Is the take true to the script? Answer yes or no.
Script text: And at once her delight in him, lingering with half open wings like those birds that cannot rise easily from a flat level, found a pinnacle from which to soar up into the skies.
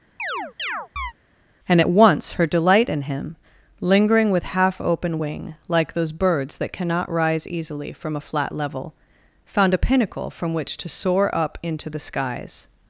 no